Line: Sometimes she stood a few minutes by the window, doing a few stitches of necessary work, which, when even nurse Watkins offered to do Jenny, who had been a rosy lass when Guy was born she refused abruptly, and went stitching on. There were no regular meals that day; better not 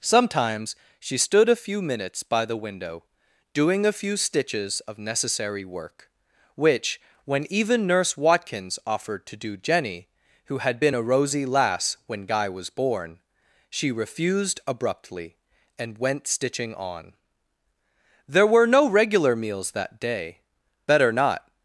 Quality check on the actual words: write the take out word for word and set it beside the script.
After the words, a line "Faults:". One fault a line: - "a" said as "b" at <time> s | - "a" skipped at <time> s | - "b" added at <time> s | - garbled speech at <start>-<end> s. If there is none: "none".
Sometimes she stood a few minutes by the window, doing a few stitches of necessary work, which, when even nurse Watkins offered to do Jenny, who had been a rosy lass when Guy was born she refused abruptly, and went stitching on. There were no regular meals that day; better not
Faults:
none